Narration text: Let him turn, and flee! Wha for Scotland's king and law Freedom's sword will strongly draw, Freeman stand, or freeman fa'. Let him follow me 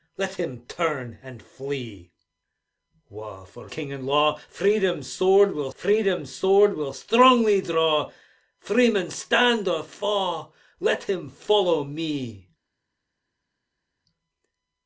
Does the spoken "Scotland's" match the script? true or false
false